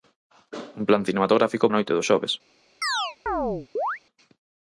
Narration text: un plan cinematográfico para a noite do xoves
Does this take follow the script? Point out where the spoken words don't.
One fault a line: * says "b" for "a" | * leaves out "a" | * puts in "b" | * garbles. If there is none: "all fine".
* leaves out "para"